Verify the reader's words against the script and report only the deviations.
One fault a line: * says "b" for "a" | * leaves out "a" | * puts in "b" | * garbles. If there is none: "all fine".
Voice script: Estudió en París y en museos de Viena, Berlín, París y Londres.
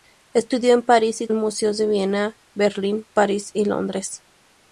all fine